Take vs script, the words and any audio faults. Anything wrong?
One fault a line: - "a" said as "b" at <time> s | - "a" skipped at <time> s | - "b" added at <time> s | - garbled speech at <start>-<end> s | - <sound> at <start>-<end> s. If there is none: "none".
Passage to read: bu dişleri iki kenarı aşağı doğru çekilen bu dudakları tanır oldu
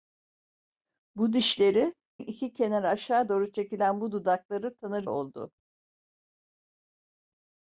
none